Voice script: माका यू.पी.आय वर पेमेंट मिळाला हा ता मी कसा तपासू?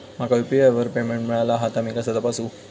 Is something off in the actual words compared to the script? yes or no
no